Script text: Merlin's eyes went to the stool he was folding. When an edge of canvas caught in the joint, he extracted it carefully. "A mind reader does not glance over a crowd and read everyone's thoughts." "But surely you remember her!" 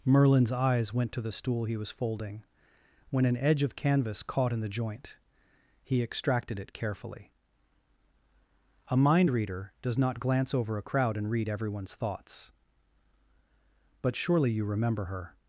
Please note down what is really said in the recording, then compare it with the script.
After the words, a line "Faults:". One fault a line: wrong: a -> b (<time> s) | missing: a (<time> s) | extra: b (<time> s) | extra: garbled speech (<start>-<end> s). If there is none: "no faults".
Merlin's eyes went to the stool he was folding. When an edge of canvas caught in the joint, he extracted it carefully. "A mind reader does not glance over a crowd and read everyone's thoughts." "But surely you remember her!"
Faults:
no faults